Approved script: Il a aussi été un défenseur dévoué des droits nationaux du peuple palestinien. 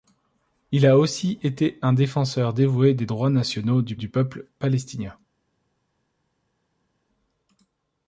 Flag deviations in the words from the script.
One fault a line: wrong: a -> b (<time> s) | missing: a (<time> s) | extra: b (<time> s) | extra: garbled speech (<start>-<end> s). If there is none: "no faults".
extra: du (4.0 s)